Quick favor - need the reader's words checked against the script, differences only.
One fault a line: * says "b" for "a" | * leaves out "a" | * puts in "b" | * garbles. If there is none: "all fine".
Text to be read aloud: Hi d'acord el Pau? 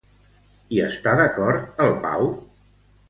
* puts in "està"